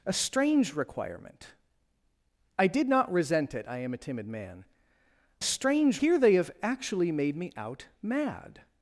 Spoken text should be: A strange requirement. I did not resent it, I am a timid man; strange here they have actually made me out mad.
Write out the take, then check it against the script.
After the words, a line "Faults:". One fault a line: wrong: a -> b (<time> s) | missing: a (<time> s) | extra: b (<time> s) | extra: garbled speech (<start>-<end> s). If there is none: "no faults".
A strange requirement. I did not resent it, I am a timid man; strange here they have actually made me out mad.
Faults:
no faults